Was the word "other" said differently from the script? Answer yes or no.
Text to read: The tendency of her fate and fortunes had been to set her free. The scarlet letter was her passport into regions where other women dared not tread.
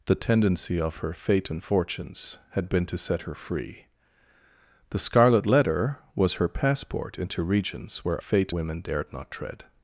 yes